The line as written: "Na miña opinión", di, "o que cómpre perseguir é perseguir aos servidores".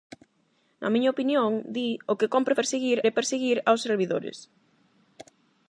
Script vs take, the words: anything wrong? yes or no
no